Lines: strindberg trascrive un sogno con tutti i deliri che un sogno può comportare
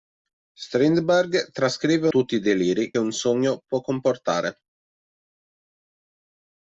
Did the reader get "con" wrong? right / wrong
wrong